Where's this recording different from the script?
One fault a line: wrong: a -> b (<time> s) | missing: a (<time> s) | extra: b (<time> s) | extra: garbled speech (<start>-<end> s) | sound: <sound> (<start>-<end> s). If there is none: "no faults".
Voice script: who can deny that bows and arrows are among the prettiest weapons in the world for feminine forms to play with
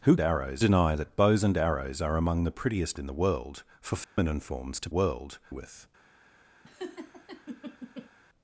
wrong: can -> arrows (0.2 s)
missing: weapons (3.0 s)
sound: dropout (4.0-4.2 s)
wrong: play -> world (4.9 s)
sound: laugh (6.6-8.1 s)